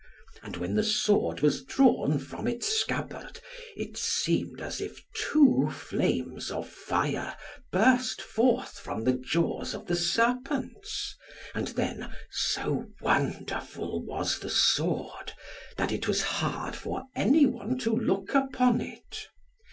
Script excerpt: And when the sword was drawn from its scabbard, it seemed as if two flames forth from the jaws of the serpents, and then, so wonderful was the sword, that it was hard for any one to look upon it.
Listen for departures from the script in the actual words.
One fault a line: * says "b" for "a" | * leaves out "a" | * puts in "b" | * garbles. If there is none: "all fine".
* puts in "of fire burst"